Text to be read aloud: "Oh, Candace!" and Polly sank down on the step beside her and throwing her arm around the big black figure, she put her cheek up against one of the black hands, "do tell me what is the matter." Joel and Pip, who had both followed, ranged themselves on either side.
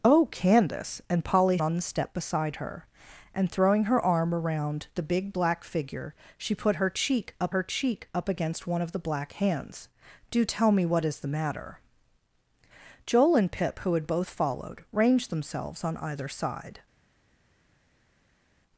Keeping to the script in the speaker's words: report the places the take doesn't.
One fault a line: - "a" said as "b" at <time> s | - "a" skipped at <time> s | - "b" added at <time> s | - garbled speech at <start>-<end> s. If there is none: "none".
- "sank down" skipped at 1.6 s
- "her cheek up" added at 7.5 s